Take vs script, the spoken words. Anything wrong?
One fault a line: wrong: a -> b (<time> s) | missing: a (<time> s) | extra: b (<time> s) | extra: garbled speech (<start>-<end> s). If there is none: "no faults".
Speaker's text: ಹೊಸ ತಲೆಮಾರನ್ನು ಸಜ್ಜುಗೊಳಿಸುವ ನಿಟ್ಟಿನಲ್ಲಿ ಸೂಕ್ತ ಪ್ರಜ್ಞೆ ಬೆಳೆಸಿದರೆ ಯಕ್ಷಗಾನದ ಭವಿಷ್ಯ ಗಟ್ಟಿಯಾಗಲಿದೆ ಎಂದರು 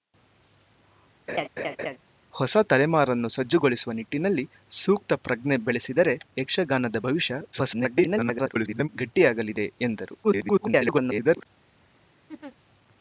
extra: garbled speech (7.5-8.9 s)
extra: garbled speech (10.2-11.5 s)